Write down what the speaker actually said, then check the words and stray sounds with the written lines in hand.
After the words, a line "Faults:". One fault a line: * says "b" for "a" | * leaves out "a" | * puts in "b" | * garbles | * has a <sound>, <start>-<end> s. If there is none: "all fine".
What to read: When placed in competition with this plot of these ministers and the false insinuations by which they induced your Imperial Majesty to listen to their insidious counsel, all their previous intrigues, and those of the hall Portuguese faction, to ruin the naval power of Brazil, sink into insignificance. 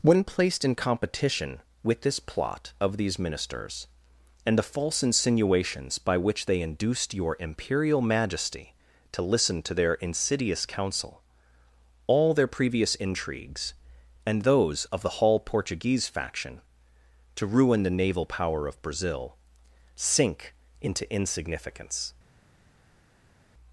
When placed in competition with this plot of these ministers and the false insinuations by which they induced your Imperial Majesty to listen to their insidious counsel, all their previous intrigues, and those of the hall Portuguese faction, to ruin the naval power of Brazil, sink into insignificance.
Faults:
all fine